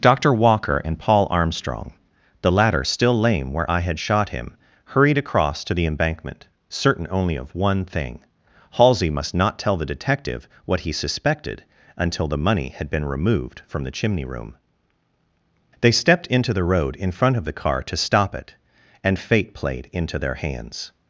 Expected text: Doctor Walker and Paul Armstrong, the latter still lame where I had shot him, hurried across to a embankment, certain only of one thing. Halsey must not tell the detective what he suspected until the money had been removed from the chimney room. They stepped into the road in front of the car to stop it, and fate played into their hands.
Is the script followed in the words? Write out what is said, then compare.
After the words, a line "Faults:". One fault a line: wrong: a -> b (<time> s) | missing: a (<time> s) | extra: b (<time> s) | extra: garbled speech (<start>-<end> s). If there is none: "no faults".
Doctor Walker and Paul Armstrong, the latter still lame where I had shot him, hurried across to the embankment, certain only of one thing. Halsey must not tell the detective what he suspected until the money had been removed from the chimney room. They stepped into the road in front of the car to stop it, and fate played into their hands.
Faults:
wrong: a -> the (5.7 s)